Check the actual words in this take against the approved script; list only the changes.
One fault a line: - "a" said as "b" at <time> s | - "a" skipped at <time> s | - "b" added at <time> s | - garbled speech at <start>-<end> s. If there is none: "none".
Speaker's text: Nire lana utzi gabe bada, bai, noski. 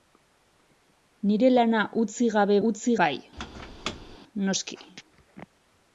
- "bada" said as "utzi" at 2.7 s